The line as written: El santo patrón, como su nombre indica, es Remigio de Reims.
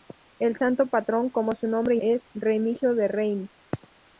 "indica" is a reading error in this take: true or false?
true